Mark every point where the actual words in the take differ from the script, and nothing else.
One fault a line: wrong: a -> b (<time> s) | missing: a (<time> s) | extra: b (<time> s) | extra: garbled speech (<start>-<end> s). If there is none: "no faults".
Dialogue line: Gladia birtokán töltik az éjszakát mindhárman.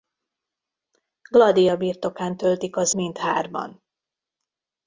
missing: éjszakát (2.9 s)